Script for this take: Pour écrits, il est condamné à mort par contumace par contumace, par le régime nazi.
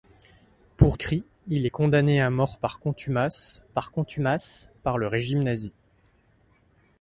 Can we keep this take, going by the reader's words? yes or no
yes